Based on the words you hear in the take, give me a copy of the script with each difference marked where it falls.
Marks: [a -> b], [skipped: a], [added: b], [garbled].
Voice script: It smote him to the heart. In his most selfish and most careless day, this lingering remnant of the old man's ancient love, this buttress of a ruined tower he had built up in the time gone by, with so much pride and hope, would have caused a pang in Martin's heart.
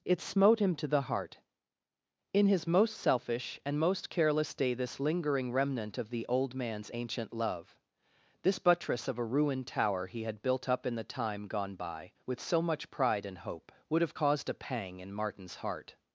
It smote him to the heart. In his most selfish and most careless day, this lingering remnant of the old man's ancient love, this buttress of a ruined tower he had built up in the time gone by, with so much pride and hope, would have caused a pang in Martin's heart.